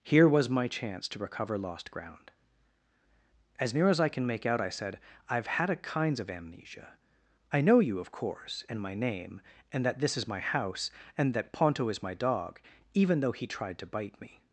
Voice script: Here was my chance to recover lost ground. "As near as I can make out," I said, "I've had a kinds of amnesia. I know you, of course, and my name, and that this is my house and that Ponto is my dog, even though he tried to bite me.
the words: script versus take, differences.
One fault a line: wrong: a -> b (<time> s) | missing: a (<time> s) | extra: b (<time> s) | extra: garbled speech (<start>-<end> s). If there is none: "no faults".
no faults